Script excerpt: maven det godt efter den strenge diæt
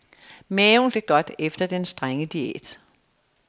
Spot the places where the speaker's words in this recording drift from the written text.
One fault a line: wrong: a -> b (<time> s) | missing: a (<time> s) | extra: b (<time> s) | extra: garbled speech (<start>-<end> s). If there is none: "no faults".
no faults